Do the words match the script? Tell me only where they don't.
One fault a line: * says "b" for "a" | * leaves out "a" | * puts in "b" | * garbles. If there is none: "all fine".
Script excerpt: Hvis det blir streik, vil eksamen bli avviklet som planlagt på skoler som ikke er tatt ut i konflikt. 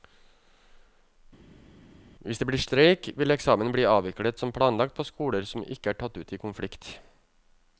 all fine